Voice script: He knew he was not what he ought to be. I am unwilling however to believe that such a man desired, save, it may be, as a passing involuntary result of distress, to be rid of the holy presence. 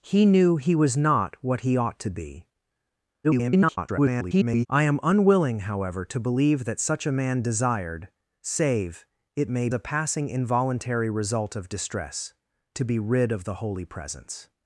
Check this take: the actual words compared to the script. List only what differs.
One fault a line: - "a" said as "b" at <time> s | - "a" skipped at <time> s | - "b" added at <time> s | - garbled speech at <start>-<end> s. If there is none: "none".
- garbled speech at 3.2-4.7 s
- "be as" skipped at 9.7 s